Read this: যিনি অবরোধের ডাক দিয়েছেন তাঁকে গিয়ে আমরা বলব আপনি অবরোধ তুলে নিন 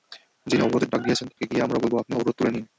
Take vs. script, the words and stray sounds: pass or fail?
fail